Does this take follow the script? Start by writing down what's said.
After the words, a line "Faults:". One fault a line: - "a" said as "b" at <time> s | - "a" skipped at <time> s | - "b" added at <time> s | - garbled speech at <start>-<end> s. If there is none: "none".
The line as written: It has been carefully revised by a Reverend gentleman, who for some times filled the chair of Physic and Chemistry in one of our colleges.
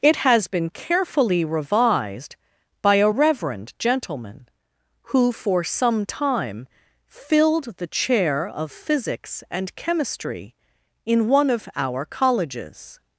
It has been carefully revised by a Reverend gentleman, who for some time filled the chair of Physics and Chemistry in one of our colleges.
Faults:
- "times" said as "time" at 6.1 s
- "Physic" said as "Physics" at 8.7 s